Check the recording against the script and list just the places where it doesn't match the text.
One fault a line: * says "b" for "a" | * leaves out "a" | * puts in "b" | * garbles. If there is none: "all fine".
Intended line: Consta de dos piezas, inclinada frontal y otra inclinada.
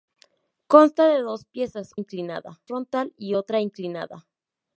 all fine